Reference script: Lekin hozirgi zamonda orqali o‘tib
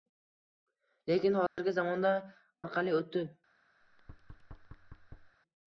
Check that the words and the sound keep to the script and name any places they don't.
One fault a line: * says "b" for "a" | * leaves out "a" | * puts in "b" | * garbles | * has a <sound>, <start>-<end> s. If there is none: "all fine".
* has a dropout, 1.5-1.6 s
* has a thud, 3.8-5.4 s